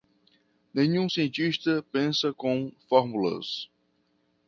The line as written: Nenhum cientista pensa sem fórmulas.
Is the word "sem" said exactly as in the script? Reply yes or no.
no